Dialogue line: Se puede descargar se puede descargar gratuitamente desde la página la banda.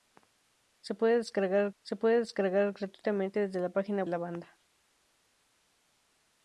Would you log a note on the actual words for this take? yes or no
no